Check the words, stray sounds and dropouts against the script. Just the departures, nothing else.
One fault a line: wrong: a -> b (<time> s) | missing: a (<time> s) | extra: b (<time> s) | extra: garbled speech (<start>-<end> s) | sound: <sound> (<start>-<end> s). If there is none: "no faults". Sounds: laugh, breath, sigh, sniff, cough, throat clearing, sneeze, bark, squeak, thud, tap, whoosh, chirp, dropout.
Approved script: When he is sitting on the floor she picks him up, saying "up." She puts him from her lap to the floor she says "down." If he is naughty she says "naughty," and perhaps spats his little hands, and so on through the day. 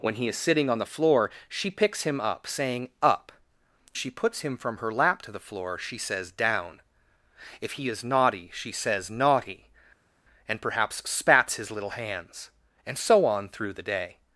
no faults